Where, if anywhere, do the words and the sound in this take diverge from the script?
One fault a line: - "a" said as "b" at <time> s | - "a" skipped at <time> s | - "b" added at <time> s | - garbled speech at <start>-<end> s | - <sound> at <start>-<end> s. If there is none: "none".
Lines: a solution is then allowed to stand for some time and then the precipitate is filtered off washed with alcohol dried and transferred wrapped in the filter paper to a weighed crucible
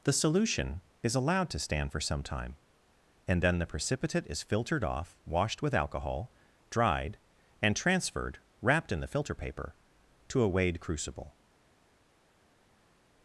- "a" said as "the" at 0.0 s
- "then" skipped at 1.1 s